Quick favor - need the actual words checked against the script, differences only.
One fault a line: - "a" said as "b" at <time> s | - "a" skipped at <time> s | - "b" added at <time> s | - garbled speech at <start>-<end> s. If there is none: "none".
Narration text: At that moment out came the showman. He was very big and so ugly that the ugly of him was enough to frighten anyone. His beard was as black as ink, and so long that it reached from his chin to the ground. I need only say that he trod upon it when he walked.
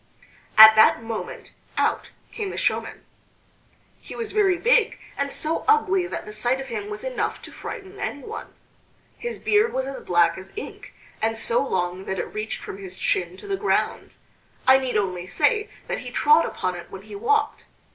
- "ugly" said as "sight" at 6.3 s